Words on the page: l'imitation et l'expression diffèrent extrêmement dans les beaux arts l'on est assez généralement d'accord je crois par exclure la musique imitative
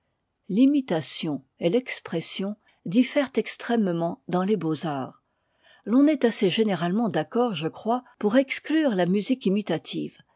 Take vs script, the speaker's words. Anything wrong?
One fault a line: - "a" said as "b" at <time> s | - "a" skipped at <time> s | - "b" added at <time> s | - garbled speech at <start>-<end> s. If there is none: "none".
- "par" said as "pour" at 8.2 s